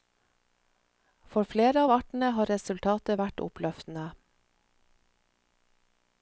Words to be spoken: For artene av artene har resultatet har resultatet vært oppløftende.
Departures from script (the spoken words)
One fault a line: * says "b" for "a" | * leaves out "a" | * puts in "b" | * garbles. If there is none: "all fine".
* says "flere" for "artene"
* leaves out "har resultatet"